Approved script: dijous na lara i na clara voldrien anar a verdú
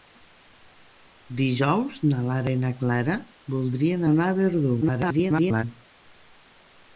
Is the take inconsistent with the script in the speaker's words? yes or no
yes